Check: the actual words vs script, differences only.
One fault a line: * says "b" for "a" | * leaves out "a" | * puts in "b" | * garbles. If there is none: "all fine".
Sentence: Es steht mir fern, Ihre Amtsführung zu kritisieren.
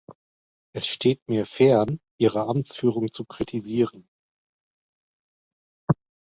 all fine